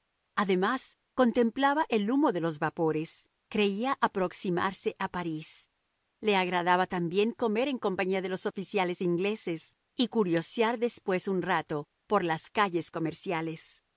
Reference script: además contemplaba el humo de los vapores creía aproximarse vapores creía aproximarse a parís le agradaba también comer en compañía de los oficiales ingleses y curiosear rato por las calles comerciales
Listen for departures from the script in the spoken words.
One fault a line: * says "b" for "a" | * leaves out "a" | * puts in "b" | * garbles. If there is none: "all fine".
* leaves out "vapores creía aproximarse"
* puts in "después un"